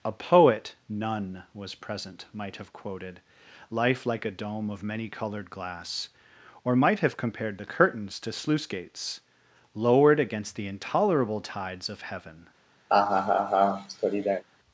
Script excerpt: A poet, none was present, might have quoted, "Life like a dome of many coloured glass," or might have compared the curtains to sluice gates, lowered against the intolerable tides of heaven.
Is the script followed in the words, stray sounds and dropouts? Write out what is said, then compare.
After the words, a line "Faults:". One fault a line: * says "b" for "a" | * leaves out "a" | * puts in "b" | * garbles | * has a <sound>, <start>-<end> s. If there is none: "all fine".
A poet, none was present, might have quoted, "Life like a dome of many coloured glass," or might have compared the curtains to sluice gates, lowered against the intolerable tides of heaven.
Faults:
* has a laugh, 12.9-14.4 s